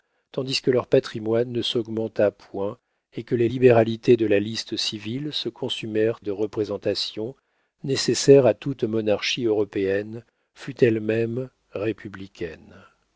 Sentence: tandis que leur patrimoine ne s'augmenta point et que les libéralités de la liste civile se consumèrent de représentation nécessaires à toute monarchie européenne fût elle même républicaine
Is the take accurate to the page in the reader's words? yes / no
yes